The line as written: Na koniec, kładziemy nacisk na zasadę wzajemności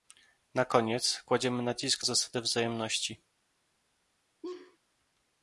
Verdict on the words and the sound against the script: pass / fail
fail